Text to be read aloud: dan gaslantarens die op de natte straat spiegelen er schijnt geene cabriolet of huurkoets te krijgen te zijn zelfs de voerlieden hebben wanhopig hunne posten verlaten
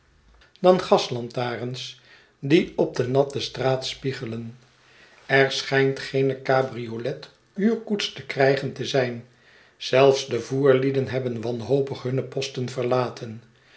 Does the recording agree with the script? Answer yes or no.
no